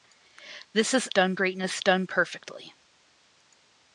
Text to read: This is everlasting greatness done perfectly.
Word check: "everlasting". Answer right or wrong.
wrong